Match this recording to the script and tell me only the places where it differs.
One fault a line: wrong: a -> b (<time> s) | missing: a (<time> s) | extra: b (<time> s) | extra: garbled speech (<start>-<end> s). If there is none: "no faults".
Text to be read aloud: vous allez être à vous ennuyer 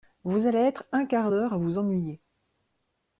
extra: un quart d'heure (0.9 s)